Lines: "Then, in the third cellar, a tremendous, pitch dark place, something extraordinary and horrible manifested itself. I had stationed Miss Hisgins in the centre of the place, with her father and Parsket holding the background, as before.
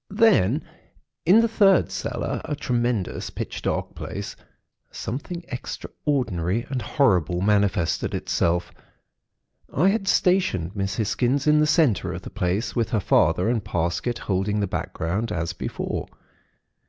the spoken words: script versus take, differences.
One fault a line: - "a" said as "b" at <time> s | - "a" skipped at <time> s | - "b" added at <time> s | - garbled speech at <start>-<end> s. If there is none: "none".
none